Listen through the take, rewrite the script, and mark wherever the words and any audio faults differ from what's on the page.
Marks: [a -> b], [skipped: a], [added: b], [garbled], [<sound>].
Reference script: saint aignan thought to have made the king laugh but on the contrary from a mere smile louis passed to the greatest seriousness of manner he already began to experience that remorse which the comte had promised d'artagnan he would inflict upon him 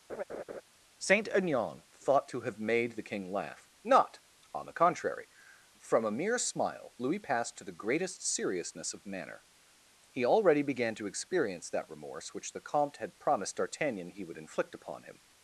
[laugh] saint aignan thought to have made the king laugh [but -> not] on the contrary from a mere smile louis passed to the greatest seriousness of manner he already began to experience that remorse which the comte had promised d'artagnan he would inflict upon him